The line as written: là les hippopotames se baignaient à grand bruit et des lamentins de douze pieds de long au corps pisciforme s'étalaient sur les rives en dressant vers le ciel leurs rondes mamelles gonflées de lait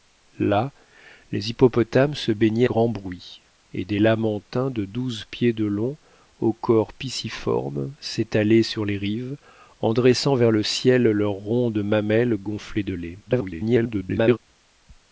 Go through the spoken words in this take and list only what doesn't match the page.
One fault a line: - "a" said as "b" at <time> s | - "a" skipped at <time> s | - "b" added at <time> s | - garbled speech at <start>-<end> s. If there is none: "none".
- "à" skipped at 2.7 s
- garbled speech at 13.3-14.4 s